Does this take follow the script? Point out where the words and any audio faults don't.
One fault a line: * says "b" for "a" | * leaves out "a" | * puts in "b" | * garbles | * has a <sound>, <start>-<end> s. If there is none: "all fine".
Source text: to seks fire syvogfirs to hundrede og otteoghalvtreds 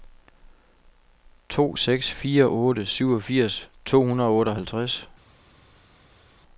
* puts in "otte"